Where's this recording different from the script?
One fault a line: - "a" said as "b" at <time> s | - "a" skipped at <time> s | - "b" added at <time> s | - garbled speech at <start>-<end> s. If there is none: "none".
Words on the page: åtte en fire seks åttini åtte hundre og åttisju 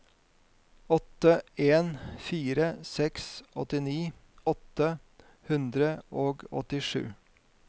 none